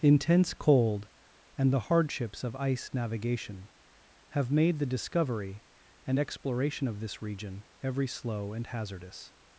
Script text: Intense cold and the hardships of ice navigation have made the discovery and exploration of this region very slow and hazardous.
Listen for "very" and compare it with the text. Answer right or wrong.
wrong